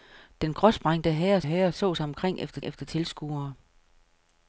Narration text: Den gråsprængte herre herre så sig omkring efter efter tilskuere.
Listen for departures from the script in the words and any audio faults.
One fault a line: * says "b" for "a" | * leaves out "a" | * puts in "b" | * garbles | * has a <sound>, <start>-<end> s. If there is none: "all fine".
all fine